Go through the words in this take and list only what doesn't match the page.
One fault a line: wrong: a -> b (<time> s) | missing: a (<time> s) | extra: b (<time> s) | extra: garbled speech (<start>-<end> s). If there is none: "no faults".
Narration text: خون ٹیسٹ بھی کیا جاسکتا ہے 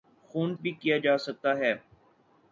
missing: ٹیسٹ (0.5 s)